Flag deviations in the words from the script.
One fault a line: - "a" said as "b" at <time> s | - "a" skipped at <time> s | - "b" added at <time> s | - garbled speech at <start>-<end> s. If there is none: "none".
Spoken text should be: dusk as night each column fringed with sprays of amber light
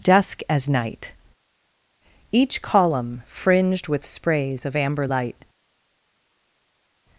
none